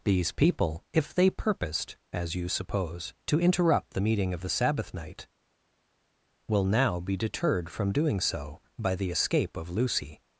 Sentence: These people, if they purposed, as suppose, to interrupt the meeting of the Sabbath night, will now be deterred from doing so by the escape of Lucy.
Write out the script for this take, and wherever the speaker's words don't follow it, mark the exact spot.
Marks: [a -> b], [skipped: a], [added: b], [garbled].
These people, if they purposed, as [added: you] suppose, to interrupt the meeting of the Sabbath night, will now be deterred from doing so by the escape of Lucy.